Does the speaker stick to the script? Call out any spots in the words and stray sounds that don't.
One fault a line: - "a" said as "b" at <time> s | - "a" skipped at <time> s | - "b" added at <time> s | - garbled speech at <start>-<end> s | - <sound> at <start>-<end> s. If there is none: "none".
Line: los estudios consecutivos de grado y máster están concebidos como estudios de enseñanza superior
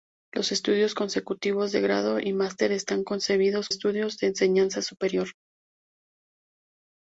- "como" skipped at 3.7 s